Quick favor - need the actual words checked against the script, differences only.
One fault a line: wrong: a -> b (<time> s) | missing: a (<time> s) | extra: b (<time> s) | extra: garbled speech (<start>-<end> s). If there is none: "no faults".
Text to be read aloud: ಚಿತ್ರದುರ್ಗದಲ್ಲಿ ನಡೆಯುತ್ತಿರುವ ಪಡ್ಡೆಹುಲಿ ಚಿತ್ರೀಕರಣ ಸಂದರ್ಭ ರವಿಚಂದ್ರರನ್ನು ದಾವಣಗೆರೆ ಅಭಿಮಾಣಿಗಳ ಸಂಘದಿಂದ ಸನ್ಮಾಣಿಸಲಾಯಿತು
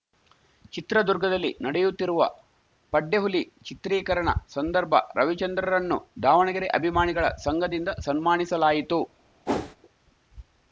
no faults